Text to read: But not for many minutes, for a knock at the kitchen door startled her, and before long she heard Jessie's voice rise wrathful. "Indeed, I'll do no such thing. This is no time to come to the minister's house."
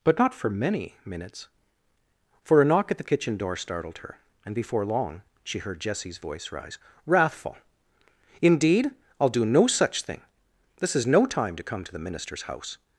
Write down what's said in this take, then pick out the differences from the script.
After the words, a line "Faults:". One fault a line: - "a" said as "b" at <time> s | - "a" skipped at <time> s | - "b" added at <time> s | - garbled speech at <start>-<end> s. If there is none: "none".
But not for many minutes, for a knock at the kitchen door startled her, and before long she heard Jessie's voice rise wrathful. "Indeed, I'll do no such thing. This is no time to come to the minister's house."
Faults:
none